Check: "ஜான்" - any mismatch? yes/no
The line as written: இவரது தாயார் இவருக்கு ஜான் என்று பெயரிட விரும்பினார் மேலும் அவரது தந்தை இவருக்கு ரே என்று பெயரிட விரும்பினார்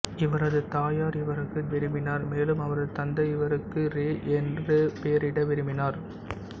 yes